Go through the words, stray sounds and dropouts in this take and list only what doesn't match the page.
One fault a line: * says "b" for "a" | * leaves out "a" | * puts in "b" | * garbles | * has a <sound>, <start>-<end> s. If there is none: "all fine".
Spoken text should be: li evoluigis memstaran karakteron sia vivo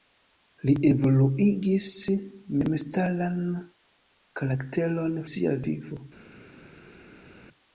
all fine